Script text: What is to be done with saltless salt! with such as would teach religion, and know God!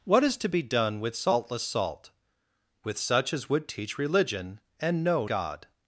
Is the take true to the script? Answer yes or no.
yes